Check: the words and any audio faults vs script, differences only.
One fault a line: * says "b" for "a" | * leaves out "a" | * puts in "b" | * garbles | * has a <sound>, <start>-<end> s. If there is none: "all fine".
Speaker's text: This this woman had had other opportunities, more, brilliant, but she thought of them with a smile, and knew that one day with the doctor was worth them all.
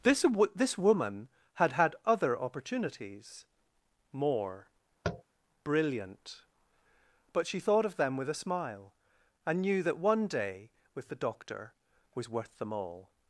* has a tap, 5.0-5.2 s